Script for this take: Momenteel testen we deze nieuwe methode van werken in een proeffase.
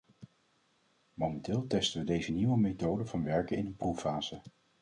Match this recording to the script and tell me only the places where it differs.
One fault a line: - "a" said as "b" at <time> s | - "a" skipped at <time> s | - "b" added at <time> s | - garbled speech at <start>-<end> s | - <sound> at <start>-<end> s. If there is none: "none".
none